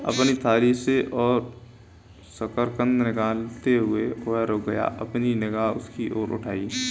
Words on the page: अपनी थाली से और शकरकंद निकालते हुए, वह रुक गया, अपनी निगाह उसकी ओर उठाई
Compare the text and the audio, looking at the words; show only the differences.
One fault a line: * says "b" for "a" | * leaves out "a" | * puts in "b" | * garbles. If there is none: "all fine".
all fine